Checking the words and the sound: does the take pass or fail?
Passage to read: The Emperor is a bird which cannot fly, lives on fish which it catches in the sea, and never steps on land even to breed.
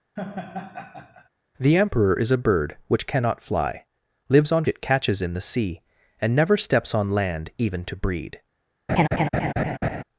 fail